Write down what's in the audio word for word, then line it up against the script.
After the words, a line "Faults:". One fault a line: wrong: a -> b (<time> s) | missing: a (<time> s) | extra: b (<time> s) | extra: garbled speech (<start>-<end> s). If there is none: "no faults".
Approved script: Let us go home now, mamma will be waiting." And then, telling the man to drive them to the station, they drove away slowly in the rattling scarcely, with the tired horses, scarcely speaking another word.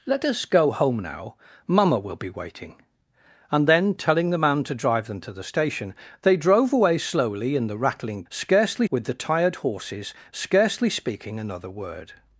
Let us go home now, mamma will be waiting." And then, telling the man to drive them to the station, they drove away slowly in the rattling scarcely, with the tired horses, scarcely speaking another word.
Faults:
no faults